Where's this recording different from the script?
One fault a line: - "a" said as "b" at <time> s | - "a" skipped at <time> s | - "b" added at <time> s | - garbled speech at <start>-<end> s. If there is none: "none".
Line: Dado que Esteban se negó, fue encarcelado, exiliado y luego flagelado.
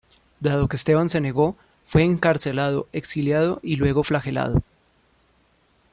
none